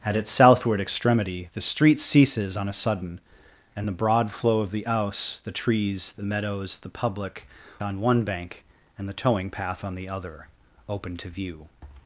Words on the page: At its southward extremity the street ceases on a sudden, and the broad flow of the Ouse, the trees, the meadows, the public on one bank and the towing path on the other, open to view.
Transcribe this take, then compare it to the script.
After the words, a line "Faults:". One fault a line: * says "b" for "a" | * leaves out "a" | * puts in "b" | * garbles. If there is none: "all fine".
At its southward extremity the street ceases on a sudden, and the broad flow of the Ouse, the trees, the meadows, the public on one bank and the towing path on the other, open to view.
Faults:
all fine